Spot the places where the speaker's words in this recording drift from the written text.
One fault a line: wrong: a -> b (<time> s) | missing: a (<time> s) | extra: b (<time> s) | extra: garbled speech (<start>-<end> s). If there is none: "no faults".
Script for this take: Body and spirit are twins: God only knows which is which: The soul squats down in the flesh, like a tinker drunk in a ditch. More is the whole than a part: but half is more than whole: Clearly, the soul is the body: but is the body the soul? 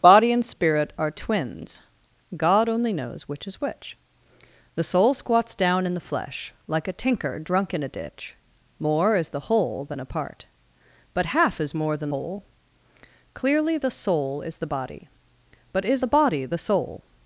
no faults